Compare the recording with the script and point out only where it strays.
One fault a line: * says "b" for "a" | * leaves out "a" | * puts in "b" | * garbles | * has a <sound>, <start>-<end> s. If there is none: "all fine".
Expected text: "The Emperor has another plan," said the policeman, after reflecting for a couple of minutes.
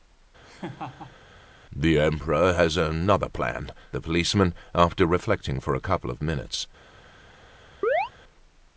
* has a laugh, 0.4-1.2 s
* leaves out "said"
* has a chirp, 7.8-8.1 s